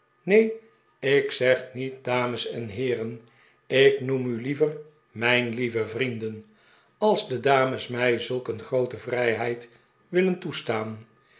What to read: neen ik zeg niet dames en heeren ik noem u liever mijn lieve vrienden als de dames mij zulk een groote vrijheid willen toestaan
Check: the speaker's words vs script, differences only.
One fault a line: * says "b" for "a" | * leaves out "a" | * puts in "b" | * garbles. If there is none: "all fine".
all fine